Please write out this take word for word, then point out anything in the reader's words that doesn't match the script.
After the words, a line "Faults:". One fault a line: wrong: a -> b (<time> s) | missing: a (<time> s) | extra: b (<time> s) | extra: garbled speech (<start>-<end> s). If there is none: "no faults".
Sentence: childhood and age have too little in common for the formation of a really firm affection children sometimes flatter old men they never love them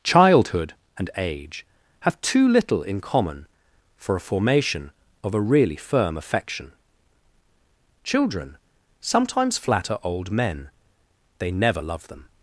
childhood and age have too little in common for a formation of a really firm affection children sometimes flatter old men they never love them
Faults:
wrong: the -> a (4.2 s)